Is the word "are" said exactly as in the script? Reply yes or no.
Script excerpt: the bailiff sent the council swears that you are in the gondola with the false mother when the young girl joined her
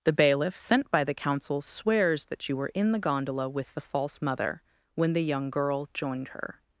no